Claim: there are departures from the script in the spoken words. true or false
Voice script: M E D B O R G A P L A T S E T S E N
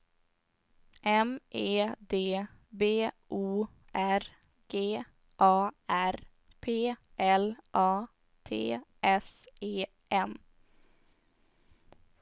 true